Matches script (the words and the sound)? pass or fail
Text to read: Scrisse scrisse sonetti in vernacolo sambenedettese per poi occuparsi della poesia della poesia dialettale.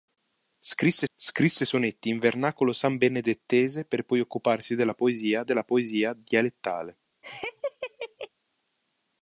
fail